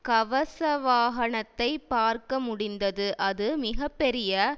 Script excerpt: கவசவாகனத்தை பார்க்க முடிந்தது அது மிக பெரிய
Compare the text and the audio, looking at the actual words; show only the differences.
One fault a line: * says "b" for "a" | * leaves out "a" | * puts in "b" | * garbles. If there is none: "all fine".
all fine